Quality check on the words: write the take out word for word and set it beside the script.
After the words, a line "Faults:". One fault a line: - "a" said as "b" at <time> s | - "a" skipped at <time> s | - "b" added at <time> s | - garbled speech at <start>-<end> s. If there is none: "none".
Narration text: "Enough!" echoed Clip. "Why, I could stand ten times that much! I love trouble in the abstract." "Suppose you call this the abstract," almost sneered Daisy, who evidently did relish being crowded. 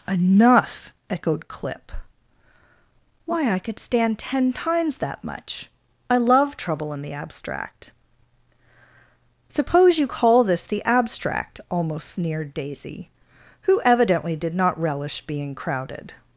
"Enough!" echoed Clip. "Why, I could stand ten times that much! I love trouble in the abstract." "Suppose you call this the abstract," almost sneered Daisy, who evidently did not relish being crowded.
Faults:
- "not" added at 14.5 s